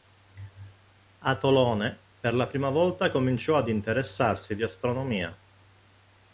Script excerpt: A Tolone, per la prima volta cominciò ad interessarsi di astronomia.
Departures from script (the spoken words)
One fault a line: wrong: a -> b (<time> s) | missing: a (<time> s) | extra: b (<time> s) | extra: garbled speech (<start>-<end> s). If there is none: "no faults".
no faults